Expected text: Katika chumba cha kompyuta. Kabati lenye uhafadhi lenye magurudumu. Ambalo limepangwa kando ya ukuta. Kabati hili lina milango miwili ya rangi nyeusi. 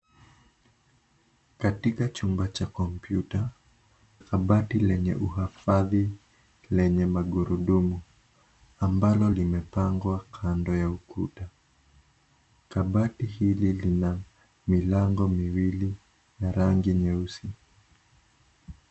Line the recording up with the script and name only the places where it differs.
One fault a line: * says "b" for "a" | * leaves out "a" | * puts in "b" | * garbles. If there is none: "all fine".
all fine